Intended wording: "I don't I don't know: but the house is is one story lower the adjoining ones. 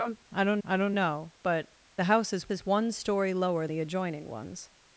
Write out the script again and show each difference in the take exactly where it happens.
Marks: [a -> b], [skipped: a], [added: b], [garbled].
"I don't I don't know: but the house is is one story lower the adjoining ones.